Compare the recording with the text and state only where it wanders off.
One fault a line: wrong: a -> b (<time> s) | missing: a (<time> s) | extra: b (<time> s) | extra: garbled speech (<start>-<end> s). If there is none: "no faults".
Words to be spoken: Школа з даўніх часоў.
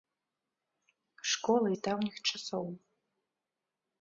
no faults